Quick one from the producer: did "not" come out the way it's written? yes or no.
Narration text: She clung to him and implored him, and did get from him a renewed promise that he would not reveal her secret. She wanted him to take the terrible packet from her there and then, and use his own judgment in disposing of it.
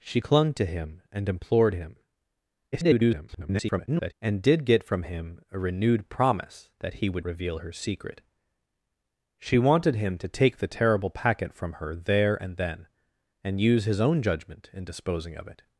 no